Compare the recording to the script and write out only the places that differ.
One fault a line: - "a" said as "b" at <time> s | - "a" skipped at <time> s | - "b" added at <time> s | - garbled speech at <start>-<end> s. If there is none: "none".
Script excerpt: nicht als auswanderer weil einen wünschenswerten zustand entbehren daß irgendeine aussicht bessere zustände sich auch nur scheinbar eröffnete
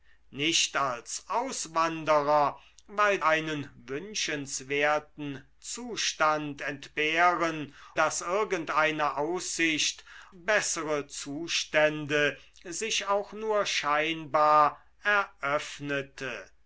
none